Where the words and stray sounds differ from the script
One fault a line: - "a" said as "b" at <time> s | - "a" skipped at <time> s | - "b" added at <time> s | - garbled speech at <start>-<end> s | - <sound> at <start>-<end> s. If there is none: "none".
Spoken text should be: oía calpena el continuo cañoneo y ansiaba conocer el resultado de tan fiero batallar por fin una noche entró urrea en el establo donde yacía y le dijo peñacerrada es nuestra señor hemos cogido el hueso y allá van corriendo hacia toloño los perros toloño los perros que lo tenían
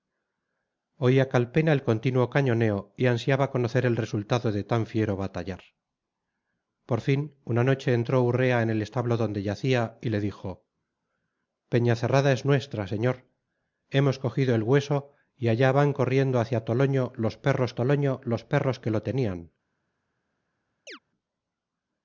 - chirp at 20.9-21.0 s